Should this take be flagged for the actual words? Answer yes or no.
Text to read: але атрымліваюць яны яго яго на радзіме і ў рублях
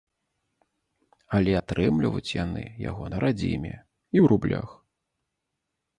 yes